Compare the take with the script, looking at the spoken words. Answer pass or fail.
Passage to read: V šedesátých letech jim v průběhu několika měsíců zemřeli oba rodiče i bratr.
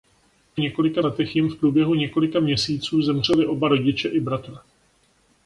fail